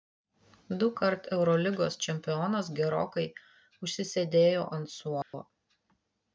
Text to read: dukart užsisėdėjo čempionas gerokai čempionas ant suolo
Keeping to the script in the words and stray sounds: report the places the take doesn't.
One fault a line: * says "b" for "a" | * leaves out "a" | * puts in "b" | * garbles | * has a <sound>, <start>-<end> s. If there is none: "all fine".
* says "eurolygos" for "užsisėdėjo"
* says "užsisėdėjo" for "čempionas"
* has a dropout, 5.2-5.3 s